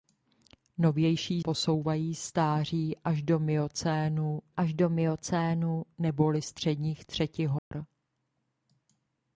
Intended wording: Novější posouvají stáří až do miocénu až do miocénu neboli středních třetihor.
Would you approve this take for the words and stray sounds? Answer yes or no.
no